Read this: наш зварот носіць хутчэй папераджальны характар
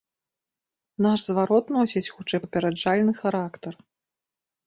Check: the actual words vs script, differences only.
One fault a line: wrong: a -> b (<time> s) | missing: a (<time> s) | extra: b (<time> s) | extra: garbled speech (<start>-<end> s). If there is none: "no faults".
no faults